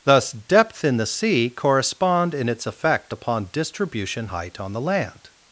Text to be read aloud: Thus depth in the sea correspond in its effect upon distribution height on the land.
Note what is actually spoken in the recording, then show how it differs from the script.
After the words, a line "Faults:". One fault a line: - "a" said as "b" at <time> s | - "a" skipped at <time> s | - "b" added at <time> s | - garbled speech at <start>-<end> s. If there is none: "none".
Thus depth in the sea correspond in its effect upon distribution height on the land.
Faults:
none